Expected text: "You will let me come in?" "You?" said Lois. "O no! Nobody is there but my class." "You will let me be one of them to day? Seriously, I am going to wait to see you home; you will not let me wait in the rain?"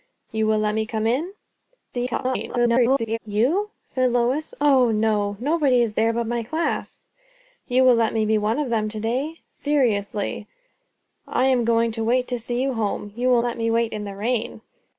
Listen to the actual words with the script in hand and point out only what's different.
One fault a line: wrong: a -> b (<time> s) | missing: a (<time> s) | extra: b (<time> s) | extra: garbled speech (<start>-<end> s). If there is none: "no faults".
extra: garbled speech (1.9-3.2 s)
missing: not (13.4 s)